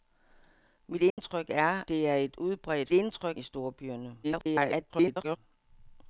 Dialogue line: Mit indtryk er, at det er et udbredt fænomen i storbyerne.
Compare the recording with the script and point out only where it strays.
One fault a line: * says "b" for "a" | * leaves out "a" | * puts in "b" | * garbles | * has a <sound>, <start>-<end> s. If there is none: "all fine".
* has a dropout, 1.1-1.2 s
* leaves out "at"
* says "indtryk" for "fænomen"
* garbles